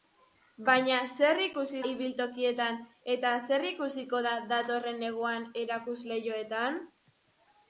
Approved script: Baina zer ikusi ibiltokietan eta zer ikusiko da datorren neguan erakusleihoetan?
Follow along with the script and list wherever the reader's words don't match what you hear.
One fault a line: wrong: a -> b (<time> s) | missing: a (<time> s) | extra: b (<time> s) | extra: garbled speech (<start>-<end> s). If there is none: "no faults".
no faults